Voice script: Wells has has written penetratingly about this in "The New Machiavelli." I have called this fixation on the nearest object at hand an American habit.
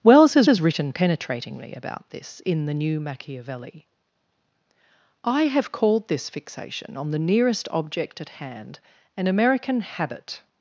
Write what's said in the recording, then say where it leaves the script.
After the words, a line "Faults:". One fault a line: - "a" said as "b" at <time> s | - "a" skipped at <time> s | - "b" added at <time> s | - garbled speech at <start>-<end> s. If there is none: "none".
Wells has has written penetratingly about this in "The New Machiavelli." I have called this fixation on the nearest object at hand an American habit.
Faults:
none